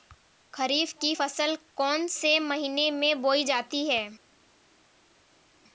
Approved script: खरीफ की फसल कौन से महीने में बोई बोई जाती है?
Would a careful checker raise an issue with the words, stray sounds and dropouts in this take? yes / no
yes